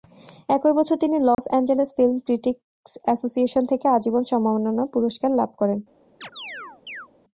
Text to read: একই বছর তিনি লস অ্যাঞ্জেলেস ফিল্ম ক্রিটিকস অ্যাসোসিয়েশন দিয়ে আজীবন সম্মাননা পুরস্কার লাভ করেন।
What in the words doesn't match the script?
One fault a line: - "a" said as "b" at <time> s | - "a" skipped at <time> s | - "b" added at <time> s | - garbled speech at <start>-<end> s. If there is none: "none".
- "দিয়ে" said as "থেকে" at 3.7 s